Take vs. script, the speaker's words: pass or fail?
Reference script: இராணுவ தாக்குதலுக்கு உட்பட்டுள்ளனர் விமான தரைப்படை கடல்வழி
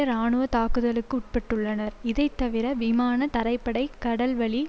fail